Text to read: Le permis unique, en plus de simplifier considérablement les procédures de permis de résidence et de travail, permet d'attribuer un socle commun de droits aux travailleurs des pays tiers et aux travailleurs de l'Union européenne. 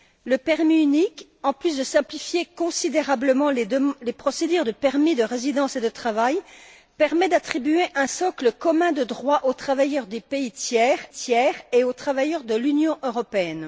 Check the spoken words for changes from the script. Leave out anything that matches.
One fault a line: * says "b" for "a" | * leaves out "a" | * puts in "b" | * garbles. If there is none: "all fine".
* puts in "tiers"